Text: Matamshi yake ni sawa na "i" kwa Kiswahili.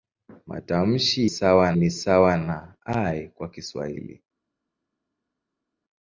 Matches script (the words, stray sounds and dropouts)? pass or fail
fail